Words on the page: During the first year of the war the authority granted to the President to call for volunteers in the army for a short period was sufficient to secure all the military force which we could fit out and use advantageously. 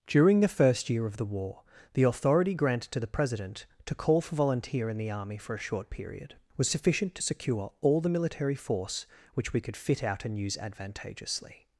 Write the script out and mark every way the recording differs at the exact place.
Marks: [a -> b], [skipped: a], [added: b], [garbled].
During the first year of the war the authority granted to the President to call for [volunteers -> volunteer] in the army for a short period was sufficient to secure all the military force which we could fit out and use advantageously.